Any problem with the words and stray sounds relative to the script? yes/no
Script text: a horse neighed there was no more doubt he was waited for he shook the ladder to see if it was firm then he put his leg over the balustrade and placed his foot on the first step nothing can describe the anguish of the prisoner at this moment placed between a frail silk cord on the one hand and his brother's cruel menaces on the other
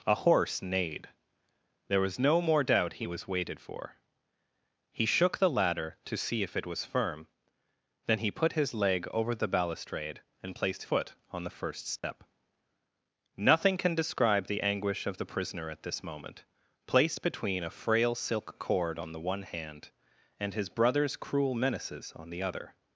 yes